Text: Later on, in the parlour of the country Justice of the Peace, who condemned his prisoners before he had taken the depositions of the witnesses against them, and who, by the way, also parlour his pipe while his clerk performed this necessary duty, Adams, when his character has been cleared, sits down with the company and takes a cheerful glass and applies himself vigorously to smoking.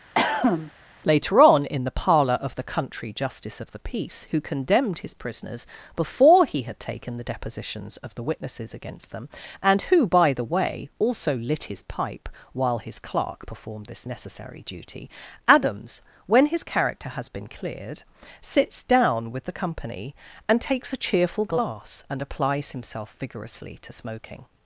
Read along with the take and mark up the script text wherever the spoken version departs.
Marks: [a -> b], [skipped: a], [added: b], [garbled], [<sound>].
[cough] Later on, in the parlour of the country Justice of the Peace, who condemned his prisoners before he had taken the depositions of the witnesses against them, and who, by the way, also [parlour -> lit] his pipe while his clerk performed this necessary duty, Adams, when his character has been cleared, sits down with the company and takes a cheerful glass and applies himself vigorously to smoking.